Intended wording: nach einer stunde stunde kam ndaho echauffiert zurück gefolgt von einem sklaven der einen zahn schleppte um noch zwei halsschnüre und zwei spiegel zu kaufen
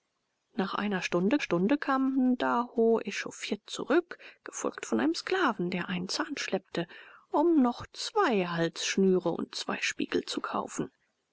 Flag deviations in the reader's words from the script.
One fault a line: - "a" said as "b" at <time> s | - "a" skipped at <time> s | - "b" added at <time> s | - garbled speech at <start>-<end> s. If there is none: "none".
none